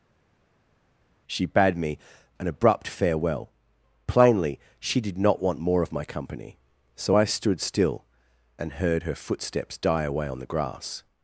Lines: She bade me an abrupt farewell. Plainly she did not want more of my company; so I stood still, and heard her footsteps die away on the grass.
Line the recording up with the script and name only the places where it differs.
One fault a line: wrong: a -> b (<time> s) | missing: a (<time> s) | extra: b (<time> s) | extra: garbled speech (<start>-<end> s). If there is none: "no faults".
no faults